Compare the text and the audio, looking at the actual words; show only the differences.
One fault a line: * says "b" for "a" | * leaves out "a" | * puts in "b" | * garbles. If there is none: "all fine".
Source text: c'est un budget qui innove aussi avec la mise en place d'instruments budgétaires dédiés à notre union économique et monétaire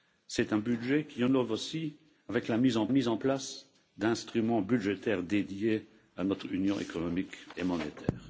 * puts in "mise en"